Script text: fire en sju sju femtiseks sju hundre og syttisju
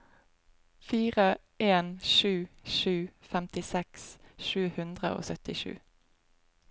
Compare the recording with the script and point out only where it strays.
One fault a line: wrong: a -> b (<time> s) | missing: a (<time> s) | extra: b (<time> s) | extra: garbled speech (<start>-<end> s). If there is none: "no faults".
no faults